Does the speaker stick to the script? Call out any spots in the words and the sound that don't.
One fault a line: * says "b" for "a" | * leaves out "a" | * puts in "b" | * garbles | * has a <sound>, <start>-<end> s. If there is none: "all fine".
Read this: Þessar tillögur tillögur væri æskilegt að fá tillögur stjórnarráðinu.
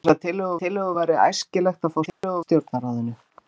* has a dropout, 2.1-2.2 s